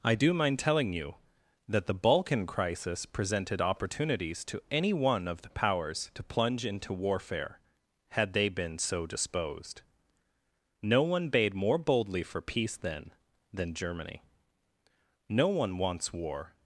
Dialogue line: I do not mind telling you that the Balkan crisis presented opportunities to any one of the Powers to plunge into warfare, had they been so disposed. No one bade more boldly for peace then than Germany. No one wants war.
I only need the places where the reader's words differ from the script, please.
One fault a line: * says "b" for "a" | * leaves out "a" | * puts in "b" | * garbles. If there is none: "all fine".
* leaves out "not"